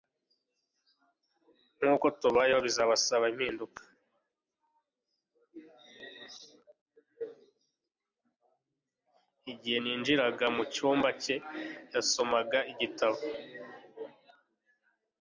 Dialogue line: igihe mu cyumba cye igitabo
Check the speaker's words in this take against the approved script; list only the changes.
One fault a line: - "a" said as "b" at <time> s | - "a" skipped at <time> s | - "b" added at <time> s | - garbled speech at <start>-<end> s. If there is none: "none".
- "ninjiraga" added at 9.8 s
- "yasomaga" added at 11.9 s